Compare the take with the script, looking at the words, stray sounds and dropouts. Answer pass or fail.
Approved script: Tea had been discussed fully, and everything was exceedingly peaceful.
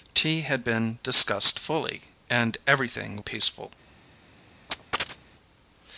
fail